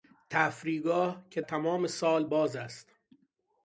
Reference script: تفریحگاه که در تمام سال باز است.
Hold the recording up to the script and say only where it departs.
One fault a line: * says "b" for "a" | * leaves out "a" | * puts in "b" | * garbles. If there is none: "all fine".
* leaves out "در"